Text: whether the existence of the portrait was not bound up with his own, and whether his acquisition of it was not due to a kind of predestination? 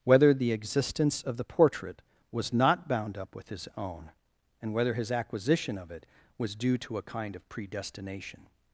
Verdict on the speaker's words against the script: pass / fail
fail